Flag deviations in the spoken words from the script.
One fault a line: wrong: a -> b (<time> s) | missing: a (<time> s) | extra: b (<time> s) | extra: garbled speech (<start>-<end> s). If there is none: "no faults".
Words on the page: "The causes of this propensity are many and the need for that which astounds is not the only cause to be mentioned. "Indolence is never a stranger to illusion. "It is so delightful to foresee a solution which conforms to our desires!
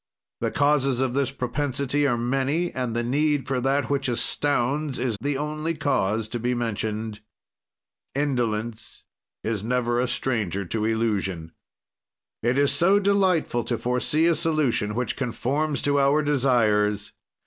missing: not (5.2 s)